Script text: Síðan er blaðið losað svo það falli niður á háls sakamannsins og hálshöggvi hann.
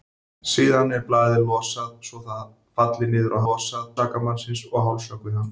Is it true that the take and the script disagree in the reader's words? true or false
true